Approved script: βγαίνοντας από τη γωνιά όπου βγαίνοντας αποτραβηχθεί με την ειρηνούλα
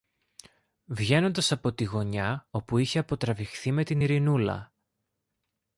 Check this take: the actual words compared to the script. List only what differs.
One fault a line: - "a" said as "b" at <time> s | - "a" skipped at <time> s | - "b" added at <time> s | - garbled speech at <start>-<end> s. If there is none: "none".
- "βγαίνοντας" said as "είχε" at 2.8 s